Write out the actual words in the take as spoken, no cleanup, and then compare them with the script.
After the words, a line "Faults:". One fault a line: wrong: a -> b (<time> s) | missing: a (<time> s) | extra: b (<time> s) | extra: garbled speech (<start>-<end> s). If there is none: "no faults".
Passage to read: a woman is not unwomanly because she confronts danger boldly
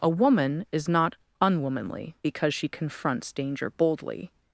a woman is not unwomanly because she confronts danger boldly
Faults:
no faults